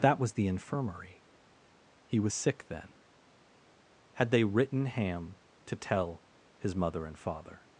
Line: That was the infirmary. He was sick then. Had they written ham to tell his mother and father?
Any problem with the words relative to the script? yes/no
no